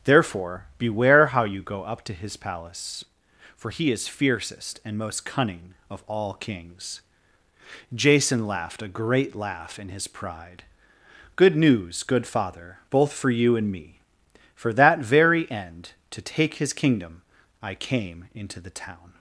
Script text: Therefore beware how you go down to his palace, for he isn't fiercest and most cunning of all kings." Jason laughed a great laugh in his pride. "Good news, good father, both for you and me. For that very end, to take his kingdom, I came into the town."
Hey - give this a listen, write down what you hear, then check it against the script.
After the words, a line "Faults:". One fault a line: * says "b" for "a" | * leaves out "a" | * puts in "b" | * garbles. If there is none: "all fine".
Therefore beware how you go up to his palace, for he is fiercest and most cunning of all kings." Jason laughed a great laugh in his pride. "Good news, good father, both for you and me. For that very end, to take his kingdom, I came into the town."
Faults:
* says "up" for "down"
* says "is" for "isn't"